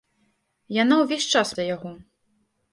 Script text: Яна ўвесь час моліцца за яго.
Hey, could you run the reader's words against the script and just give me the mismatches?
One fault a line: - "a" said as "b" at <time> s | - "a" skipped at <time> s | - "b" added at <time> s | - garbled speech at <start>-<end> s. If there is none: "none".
- "моліцца" skipped at 1.5 s